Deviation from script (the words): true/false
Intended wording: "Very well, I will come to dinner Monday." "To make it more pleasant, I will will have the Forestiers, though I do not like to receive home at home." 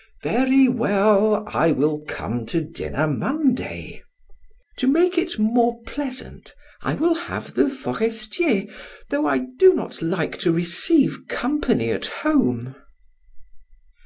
true